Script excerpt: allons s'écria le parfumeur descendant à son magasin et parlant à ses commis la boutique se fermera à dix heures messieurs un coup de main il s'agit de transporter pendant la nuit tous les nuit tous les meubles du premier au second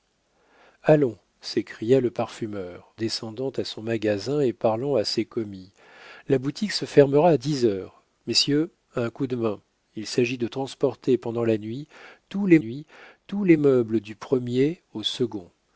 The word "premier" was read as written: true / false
true